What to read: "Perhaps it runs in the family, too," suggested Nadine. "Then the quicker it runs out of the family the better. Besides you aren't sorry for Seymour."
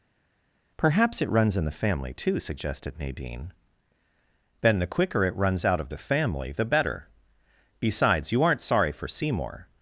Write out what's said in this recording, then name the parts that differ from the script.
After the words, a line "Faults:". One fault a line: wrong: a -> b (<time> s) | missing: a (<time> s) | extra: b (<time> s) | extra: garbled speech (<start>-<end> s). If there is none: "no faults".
"Perhaps it runs in the family, too," suggested Nadine. "Then the quicker it runs out of the family the better. Besides you aren't sorry for Seymour."
Faults:
no faults